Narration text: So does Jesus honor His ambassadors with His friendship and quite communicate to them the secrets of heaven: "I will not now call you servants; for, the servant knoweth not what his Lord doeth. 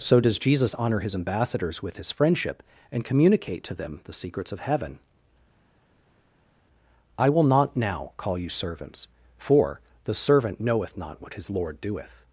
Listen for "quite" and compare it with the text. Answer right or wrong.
wrong